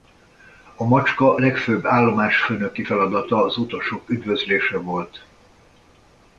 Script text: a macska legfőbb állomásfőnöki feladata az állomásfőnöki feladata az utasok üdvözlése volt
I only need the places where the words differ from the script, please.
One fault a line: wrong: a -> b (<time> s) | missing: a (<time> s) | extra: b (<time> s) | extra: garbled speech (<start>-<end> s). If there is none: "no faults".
missing: állomásfőnöki feladata az (3.6 s)